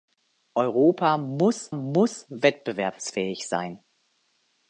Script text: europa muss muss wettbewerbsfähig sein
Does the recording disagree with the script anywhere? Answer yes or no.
no